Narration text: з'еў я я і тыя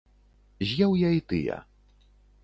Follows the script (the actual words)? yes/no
no